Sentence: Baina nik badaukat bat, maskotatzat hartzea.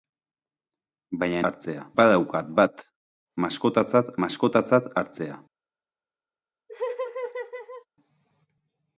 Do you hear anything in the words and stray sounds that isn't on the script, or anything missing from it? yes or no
yes